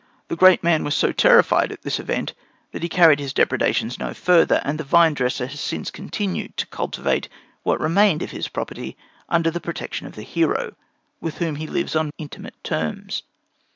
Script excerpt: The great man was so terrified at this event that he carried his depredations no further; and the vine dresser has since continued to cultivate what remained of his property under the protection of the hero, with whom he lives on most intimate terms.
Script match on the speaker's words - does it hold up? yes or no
no